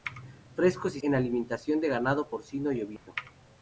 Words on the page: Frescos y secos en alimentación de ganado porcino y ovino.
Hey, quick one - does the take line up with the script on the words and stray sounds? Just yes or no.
no